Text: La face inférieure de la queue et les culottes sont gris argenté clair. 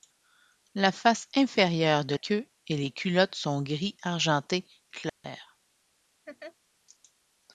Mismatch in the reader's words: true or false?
true